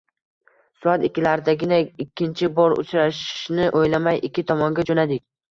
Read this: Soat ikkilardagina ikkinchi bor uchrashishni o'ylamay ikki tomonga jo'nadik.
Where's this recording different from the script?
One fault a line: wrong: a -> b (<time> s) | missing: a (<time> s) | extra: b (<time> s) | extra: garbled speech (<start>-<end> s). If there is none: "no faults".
no faults